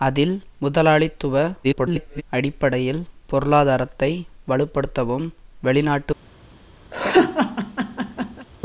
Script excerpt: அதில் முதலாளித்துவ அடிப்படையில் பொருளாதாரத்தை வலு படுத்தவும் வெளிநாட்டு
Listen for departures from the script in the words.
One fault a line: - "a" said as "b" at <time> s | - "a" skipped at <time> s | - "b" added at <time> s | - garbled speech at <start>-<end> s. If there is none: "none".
- garbled speech at 1.6-2.2 s